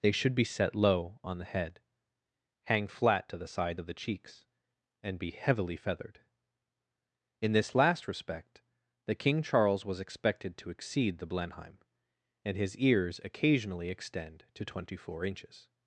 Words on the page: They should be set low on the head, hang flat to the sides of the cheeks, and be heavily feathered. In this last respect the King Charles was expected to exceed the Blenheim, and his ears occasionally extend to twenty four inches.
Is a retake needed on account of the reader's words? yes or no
no